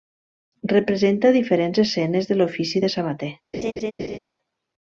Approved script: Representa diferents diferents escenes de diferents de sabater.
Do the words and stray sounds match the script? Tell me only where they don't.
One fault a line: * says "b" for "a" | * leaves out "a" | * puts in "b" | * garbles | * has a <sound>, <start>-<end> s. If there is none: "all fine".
* leaves out "diferents"
* says "l'ofici" for "diferents"
* has a laugh, 3.5-4.2 s